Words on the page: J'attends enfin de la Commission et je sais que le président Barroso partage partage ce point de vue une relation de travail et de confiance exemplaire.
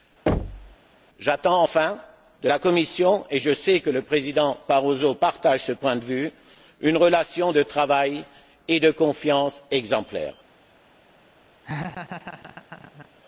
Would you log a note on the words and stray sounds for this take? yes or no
yes